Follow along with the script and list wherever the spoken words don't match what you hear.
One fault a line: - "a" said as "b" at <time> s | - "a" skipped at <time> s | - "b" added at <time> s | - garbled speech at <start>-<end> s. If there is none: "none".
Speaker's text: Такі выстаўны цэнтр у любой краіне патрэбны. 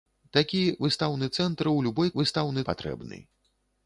- "краіне" said as "выстаўны" at 2.2 s